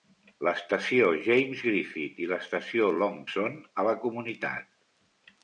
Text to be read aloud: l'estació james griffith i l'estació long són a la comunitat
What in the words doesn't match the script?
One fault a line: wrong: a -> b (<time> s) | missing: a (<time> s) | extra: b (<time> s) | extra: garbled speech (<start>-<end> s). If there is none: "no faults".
no faults